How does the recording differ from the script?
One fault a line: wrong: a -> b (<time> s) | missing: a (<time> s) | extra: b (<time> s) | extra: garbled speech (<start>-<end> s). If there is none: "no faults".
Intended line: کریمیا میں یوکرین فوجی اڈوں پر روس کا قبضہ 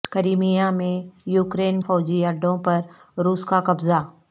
no faults